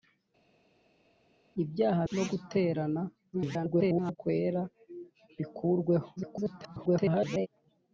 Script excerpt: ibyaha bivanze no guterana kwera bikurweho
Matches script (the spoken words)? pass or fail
fail